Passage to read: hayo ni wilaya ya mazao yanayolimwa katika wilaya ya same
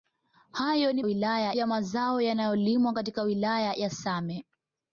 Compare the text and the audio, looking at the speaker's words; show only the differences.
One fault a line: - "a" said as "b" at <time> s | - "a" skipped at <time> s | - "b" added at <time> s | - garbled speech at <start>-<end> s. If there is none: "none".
none